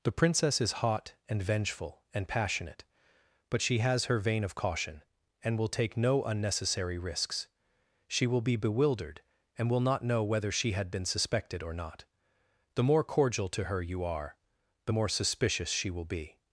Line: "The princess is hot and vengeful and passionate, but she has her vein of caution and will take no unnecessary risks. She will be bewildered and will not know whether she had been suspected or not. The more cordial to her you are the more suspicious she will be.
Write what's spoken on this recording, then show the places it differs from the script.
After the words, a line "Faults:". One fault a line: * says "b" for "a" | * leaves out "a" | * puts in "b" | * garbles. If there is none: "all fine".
"The princess is hot and vengeful and passionate, but she has her vein of caution and will take no unnecessary risks. She will be bewildered and will not know whether she had been suspected or not. The more cordial to her you are the more suspicious she will be.
Faults:
all fine